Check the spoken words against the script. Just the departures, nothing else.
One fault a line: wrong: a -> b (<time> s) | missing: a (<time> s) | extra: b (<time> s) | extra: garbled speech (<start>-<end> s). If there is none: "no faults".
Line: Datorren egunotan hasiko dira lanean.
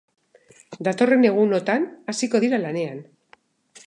no faults